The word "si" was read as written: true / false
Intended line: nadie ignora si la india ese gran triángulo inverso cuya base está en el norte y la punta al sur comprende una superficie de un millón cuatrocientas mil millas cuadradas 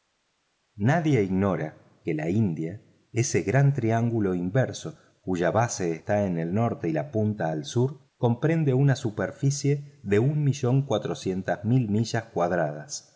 false